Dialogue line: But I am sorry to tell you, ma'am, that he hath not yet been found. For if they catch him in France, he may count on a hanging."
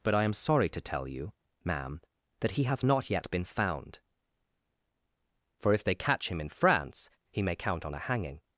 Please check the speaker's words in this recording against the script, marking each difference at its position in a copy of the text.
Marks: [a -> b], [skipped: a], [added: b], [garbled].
But I am sorry to tell you, ma'am, that he hath not yet been found. For if they catch him in France, he may count on a hanging."